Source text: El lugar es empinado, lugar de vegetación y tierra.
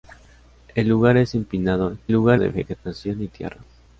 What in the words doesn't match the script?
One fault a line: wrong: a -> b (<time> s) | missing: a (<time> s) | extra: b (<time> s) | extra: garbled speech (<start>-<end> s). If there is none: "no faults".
no faults